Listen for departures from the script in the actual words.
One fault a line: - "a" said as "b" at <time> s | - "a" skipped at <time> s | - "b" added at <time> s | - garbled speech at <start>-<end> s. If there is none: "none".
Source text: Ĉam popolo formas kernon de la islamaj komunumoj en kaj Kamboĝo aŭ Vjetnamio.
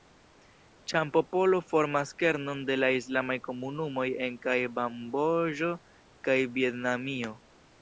- "aŭ" said as "kaj" at 6.3 s